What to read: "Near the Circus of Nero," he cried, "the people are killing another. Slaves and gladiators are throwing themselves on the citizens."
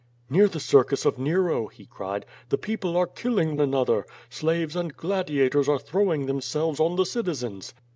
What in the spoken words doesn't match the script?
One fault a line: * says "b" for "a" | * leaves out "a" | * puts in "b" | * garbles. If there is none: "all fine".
all fine